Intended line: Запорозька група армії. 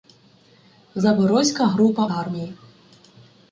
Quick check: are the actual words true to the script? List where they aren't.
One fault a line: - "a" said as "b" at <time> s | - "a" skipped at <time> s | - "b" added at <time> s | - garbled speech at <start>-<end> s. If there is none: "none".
none